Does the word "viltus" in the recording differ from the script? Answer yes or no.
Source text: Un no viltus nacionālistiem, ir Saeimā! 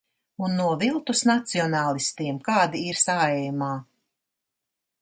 no